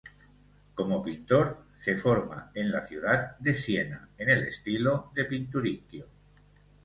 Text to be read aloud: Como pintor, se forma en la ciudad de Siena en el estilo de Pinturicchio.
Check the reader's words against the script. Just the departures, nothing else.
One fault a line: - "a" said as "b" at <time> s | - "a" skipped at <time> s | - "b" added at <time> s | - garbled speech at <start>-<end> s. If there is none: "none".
none